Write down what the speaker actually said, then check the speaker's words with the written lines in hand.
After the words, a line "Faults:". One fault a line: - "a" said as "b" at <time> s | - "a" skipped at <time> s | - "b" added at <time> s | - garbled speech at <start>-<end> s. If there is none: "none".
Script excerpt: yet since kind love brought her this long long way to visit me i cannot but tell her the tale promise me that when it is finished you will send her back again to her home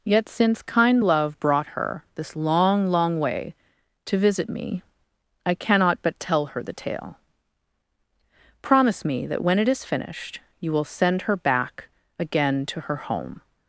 yet since kind love brought her this long long way to visit me i cannot but tell her the tale promise me that when it is finished you will send her back again to her home
Faults:
none